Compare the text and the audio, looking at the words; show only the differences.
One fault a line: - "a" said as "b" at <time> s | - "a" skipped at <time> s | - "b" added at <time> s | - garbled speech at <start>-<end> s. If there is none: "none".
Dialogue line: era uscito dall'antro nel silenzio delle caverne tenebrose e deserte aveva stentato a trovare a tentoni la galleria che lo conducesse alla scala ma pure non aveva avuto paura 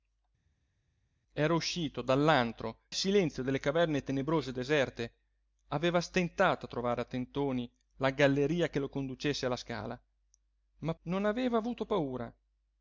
- "nel" skipped at 2.8 s
- "pure" skipped at 10.9 s